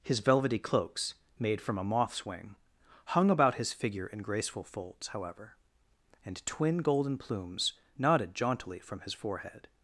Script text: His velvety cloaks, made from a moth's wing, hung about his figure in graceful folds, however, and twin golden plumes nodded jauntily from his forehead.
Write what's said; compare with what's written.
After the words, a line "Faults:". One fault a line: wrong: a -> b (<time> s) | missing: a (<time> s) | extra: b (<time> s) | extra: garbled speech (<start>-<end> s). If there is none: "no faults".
His velvety cloaks, made from a moth's wing, hung about his figure in graceful folds, however, and twin golden plumes nodded jauntily from his forehead.
Faults:
no faults